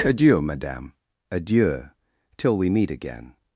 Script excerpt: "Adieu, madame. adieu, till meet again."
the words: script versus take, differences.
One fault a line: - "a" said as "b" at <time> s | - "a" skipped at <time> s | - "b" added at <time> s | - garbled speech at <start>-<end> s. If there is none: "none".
- "we" added at 2.6 s